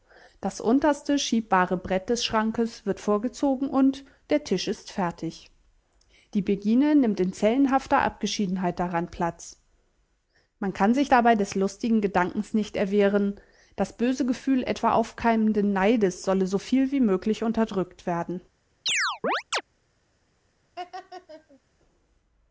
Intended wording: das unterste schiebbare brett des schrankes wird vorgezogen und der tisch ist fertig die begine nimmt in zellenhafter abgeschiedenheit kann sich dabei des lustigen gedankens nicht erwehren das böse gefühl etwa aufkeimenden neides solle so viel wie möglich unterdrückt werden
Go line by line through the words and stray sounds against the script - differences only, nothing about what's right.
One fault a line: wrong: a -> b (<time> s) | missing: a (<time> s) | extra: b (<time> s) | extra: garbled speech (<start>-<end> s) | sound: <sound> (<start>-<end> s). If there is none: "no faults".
extra: daran platz man (8.8 s)
sound: chirp (18.9-19.6 s)
sound: laugh (20.8-21.6 s)